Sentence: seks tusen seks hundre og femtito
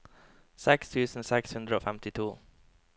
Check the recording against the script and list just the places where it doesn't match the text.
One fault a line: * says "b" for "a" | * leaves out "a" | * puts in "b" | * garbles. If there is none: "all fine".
all fine